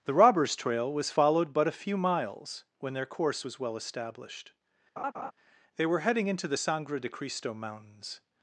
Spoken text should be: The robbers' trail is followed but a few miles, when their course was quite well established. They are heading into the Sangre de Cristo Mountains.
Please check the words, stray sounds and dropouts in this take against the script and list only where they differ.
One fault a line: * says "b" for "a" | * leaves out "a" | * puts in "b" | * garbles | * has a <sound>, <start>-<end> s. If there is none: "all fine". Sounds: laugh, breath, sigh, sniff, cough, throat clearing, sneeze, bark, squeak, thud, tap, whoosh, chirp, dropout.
* says "was" for "is"
* leaves out "quite"
* has a laugh, 5.0-5.3 s
* says "were" for "are"